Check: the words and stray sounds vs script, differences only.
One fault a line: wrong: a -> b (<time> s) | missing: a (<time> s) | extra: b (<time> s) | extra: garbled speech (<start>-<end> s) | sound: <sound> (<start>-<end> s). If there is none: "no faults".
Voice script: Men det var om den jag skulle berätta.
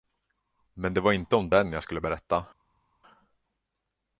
extra: inte (1.1 s)